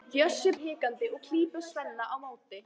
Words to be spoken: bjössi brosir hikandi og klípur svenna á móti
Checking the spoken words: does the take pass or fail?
fail